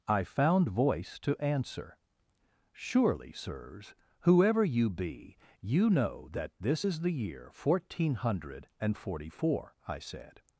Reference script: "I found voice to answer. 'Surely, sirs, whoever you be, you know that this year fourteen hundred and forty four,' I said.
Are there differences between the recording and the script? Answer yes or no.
yes